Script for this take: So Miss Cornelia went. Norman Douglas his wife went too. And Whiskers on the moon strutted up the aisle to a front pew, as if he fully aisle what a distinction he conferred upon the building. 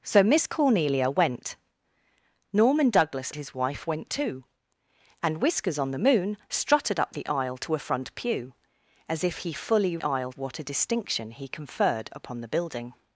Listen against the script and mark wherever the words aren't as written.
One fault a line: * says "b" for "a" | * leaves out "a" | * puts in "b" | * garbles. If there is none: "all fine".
all fine